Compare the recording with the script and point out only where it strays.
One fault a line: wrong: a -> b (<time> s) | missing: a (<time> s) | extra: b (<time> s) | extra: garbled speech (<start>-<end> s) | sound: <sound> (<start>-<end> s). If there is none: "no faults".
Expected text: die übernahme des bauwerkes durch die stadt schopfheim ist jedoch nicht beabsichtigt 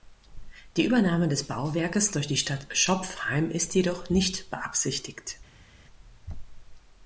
no faults